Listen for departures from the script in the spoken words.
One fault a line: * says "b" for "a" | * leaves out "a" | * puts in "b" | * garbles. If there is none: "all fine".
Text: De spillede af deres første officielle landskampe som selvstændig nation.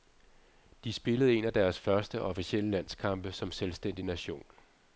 * puts in "en"